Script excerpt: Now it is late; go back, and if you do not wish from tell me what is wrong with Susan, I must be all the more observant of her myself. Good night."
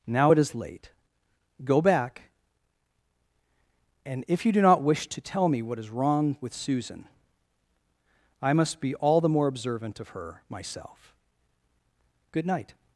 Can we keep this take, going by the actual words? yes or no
no